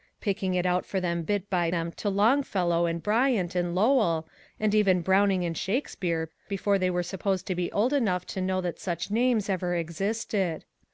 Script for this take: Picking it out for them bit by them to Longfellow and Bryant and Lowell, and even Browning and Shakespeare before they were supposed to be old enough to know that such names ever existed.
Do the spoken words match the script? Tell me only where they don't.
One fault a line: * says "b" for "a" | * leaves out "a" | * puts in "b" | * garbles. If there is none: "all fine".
all fine